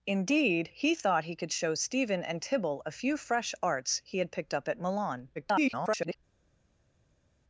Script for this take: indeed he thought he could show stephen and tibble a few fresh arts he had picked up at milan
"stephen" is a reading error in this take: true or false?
false